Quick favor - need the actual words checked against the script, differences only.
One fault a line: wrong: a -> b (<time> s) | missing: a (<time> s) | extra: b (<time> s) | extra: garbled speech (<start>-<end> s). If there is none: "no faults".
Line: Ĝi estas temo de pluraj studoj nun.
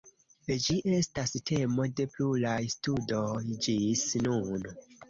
extra: ĝis (3.7 s)